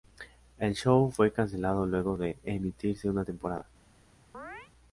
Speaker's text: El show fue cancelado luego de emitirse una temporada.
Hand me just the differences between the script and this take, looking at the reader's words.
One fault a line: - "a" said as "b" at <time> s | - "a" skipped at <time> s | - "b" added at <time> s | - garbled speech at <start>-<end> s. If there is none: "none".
none